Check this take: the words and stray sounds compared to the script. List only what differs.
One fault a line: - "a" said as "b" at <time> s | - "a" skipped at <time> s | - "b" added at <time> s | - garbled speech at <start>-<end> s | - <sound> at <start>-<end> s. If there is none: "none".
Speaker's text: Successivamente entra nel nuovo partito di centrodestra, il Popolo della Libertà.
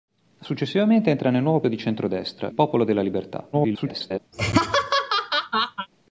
- "partito" skipped at 1.6 s
- "il" skipped at 2.5 s
- garbled speech at 3.5-4.2 s
- laugh at 4.3-5.9 s